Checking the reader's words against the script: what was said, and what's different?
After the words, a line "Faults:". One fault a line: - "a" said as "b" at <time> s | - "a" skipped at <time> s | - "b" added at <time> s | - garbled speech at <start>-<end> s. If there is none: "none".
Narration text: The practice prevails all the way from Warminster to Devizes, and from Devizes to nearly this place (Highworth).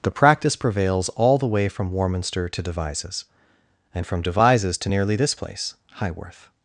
The practice prevails all the way from Warminster to Devizes, and from Devizes to nearly this place (Highworth).
Faults:
none